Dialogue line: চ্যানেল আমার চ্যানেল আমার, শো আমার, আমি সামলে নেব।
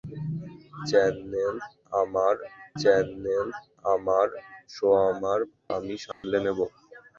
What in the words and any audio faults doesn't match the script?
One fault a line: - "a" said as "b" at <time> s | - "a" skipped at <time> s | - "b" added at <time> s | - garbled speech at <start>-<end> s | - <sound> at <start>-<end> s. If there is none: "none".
- dropout at 6.1-6.2 s